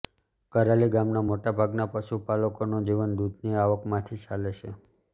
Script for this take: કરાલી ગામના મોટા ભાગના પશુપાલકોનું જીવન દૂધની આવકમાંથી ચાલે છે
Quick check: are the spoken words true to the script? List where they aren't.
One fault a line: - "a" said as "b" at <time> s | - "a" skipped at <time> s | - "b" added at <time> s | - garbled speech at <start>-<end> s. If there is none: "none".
none